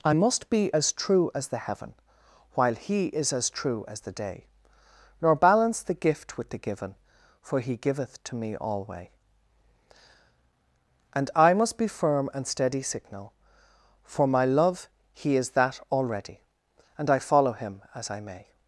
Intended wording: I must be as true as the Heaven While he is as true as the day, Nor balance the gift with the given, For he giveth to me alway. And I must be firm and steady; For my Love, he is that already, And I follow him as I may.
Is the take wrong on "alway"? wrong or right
right